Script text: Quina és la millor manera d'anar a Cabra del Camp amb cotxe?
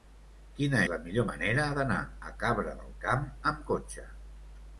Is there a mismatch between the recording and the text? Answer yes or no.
yes